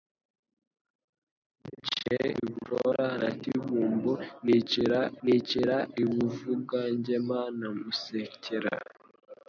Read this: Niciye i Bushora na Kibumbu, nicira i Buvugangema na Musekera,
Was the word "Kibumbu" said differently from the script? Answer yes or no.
no